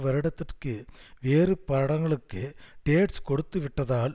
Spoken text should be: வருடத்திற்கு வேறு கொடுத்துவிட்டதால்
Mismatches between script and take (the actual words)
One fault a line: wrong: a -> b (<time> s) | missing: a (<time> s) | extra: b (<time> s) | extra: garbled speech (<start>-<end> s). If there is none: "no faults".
extra: படங்களுக்கு டேட்ஸ் (1.7 s)